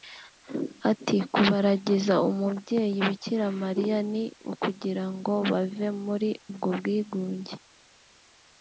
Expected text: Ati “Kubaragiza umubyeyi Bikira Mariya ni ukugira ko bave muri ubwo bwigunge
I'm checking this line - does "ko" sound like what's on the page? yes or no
no